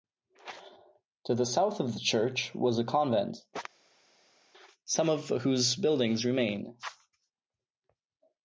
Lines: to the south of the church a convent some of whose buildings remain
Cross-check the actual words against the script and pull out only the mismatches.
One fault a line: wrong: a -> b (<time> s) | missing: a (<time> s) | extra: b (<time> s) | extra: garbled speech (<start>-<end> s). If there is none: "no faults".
extra: was (2.5 s)